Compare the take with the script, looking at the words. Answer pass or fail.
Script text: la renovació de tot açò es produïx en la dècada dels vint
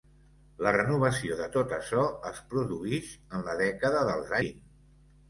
pass